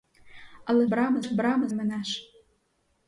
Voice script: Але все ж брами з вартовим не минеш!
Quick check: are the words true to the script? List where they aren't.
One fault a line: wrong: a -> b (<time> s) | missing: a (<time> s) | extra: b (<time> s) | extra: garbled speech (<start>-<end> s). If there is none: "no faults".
wrong: все -> брами (0.9 s)
missing: з вартовим не (1.7 s)